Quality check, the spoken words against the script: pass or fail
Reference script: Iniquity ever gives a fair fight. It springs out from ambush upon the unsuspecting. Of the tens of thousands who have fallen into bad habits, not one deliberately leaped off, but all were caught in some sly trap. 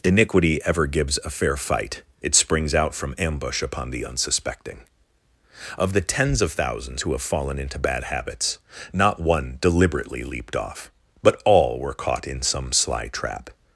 pass